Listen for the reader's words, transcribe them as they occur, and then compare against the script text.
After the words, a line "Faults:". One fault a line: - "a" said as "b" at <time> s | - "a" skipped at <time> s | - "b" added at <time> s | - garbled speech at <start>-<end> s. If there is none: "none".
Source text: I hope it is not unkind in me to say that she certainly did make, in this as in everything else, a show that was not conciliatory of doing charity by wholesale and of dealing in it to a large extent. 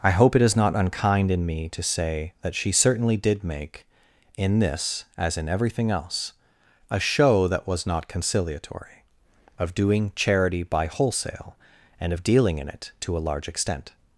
I hope it is not unkind in me to say that she certainly did make, in this as in everything else, a show that was not conciliatory of doing charity by wholesale and of dealing in it to a large extent.
Faults:
none